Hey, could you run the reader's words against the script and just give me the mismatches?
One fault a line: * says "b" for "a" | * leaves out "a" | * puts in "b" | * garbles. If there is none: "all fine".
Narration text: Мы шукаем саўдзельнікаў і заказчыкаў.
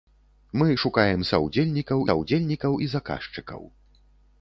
* puts in "саўдзельнікаў"